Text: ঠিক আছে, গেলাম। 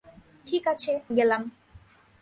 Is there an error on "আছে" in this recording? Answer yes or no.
no